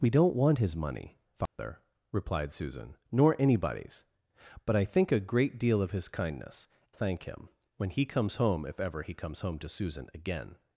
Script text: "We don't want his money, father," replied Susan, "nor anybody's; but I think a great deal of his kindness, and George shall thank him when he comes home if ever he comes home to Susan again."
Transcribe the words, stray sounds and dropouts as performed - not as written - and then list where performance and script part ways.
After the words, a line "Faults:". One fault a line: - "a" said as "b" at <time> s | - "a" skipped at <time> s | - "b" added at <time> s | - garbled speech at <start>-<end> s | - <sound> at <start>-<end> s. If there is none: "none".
"We don't want his money, father," replied Susan, "nor anybody's; but I think a great deal of his kindness, thank him when he comes home if ever he comes home to Susan again."
Faults:
- dropout at 1.5-1.6 s
- "and George shall" skipped at 6.7 s